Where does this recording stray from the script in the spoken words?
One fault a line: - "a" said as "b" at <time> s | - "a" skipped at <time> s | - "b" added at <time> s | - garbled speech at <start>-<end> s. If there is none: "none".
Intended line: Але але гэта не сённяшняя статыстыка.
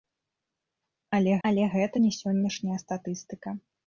none